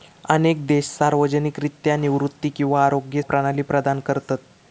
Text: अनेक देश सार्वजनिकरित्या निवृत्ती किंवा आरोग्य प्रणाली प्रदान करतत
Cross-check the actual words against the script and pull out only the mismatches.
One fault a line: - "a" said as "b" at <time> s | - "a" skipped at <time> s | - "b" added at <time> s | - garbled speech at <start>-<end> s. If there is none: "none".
none